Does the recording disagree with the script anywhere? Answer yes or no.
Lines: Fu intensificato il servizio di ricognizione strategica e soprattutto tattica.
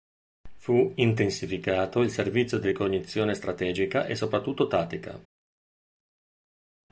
no